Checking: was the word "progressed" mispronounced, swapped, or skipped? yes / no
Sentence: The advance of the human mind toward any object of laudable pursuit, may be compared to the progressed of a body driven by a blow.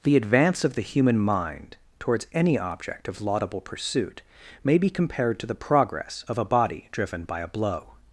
yes